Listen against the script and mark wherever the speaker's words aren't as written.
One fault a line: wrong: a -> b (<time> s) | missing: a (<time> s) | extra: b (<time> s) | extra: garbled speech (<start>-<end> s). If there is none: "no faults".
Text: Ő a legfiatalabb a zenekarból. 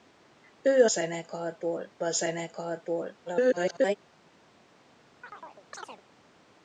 wrong: legfiatalabb -> zenekarból (0.9 s)
extra: garbled speech (3.3-4.0 s)